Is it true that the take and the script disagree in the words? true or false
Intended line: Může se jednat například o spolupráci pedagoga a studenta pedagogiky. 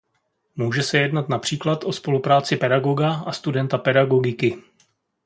false